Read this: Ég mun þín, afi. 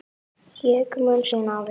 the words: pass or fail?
pass